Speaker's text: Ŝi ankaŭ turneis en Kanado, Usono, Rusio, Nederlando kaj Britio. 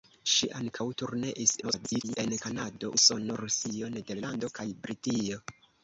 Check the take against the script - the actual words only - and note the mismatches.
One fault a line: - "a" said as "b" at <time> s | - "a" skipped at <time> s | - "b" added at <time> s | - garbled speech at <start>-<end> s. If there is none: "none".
- garbled speech at 1.6-2.2 s